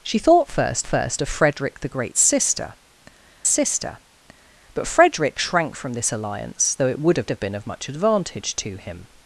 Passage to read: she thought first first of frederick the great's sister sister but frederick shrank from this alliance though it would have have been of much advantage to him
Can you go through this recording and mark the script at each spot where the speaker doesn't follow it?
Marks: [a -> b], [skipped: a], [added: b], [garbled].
she thought first first of frederick the great's sister sister but frederick shrank from this alliance though it would have have been of much advantage to him